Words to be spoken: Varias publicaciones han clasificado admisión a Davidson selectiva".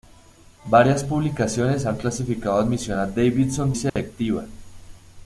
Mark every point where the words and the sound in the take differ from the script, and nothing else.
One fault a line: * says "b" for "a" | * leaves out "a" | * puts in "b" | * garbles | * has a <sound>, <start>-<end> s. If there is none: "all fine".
* has a dropout, 3.9-4.0 s